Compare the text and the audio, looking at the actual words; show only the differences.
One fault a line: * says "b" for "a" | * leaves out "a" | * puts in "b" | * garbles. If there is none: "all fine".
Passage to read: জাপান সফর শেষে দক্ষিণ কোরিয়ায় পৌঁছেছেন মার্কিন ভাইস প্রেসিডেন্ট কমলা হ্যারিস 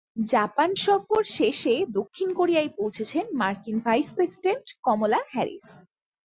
all fine